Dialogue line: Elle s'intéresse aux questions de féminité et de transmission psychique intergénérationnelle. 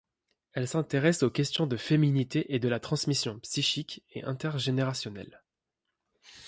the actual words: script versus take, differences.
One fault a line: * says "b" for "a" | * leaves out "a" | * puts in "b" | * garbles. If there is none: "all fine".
* puts in "la"
* puts in "et"